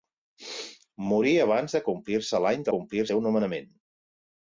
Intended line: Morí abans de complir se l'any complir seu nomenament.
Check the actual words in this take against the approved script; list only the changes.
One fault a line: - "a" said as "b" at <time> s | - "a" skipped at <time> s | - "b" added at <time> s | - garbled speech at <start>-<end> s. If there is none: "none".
none